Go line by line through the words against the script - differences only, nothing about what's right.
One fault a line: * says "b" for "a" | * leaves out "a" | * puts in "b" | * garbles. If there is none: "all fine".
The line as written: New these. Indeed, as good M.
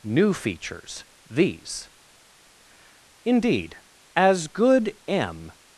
* puts in "features"